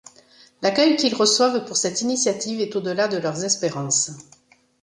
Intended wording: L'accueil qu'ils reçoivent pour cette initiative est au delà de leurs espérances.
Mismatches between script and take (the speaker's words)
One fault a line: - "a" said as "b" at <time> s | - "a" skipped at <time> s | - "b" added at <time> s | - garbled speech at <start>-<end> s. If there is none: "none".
none